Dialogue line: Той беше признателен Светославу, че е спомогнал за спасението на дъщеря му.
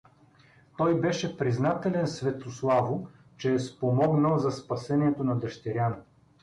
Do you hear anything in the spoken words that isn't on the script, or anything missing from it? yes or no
no